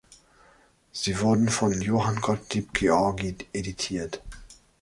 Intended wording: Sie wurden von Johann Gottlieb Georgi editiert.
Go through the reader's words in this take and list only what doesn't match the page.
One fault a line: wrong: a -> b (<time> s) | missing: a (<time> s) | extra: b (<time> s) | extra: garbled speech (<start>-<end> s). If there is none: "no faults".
no faults